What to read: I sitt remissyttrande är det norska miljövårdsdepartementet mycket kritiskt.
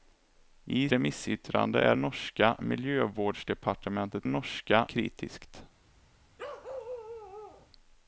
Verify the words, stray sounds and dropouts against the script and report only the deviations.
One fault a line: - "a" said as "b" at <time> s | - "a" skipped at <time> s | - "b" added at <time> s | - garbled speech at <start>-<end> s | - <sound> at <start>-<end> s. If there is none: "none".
- "sitt" skipped at 0.9 s
- "det" skipped at 2.0 s
- "mycket" said as "norska" at 4.2 s
- bark at 6.4-7.7 s